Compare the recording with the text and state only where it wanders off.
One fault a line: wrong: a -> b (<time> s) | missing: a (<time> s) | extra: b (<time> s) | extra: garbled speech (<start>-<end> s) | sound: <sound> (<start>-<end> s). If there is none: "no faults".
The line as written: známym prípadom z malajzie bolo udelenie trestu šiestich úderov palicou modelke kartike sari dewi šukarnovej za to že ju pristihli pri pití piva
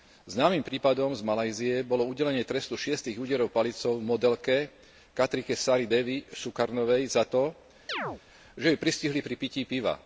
sound: chirp (7.9-8.2 s)